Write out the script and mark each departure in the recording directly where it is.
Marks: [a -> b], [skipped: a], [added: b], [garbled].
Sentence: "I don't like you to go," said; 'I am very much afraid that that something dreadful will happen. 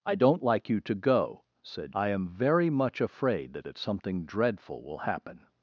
"I don't like you to go," said; 'I am very much afraid that that something dreadful will happen.